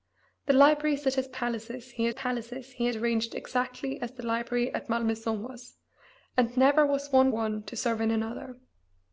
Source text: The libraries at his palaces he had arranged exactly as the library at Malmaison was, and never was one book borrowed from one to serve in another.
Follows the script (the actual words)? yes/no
no